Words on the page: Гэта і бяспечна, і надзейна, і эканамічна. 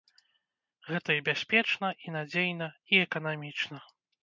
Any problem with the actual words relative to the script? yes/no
no